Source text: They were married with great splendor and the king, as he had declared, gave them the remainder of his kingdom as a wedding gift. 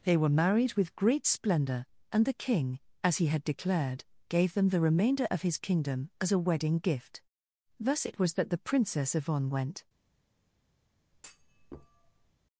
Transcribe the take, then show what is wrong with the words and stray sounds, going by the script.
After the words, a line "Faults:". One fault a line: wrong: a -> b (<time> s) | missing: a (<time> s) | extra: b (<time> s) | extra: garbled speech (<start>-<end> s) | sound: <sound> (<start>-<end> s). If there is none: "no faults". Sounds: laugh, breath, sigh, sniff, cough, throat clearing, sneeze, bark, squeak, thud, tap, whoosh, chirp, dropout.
They were married with great splendor and the king, as he had declared, gave them the remainder of his kingdom as a wedding gift. Thus it was that the Princess Yvonne went
Faults:
extra: Thus it was that the Princess Yvonne went (7.8 s)
sound: thud (11.1-12.3 s)